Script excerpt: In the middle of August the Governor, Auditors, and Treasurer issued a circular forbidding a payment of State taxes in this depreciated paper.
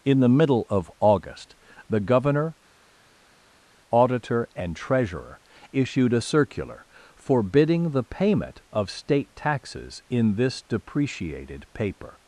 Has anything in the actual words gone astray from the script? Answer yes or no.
yes